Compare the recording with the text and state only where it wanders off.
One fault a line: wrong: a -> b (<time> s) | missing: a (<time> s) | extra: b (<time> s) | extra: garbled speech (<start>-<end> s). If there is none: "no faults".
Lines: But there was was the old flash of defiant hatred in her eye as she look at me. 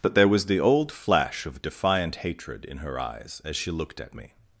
missing: was (0.5 s)
wrong: eye -> eyes (3.0 s)
wrong: look -> looked (3.7 s)